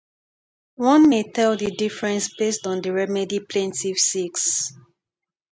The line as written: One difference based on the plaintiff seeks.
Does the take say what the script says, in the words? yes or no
no